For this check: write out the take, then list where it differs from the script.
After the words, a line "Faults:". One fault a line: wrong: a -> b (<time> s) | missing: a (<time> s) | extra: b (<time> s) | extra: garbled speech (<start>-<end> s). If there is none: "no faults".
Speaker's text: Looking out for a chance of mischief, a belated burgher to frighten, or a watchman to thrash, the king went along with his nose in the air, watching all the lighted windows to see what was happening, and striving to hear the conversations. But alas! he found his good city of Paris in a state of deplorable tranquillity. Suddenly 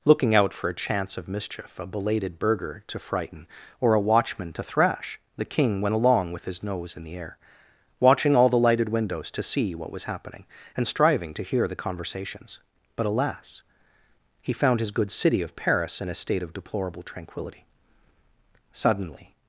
Looking out for a chance of mischief, a belated burgher to frighten, or a watchman to thrash, the king went along with his nose in the air, watching all the lighted windows to see what was happening, and striving to hear the conversations. But alas! he found his good city of Paris in a state of deplorable tranquillity. Suddenly
Faults:
no faults